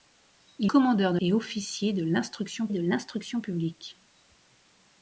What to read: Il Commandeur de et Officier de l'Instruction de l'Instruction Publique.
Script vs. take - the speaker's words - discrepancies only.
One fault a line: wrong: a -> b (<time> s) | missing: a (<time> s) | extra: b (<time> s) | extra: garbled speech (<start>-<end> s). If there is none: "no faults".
no faults